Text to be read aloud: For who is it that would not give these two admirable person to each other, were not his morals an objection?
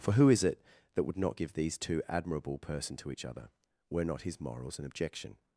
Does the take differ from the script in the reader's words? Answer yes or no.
no